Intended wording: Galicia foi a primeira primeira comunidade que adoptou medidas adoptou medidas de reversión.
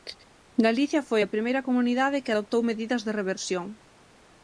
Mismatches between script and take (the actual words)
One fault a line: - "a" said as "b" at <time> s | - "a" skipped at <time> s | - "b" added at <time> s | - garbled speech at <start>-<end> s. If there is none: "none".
- "primeira" skipped at 1.6 s
- "adoptou medidas" skipped at 3.0 s